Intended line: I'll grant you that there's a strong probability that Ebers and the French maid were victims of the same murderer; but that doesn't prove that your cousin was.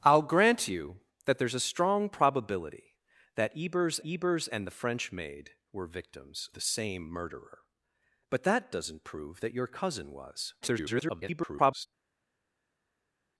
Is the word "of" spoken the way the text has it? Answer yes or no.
no